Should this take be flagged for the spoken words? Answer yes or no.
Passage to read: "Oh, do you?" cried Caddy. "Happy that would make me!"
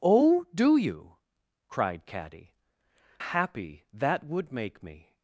no